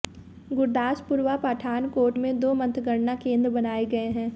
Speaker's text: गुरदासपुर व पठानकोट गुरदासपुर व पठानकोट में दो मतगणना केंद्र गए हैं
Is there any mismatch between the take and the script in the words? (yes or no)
yes